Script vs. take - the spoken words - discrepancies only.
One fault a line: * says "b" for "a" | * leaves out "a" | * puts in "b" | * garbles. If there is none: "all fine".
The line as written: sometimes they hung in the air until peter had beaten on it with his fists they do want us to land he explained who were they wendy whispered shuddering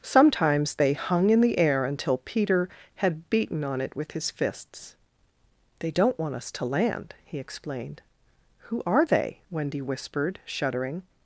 * says "don't" for "do"
* says "are" for "were"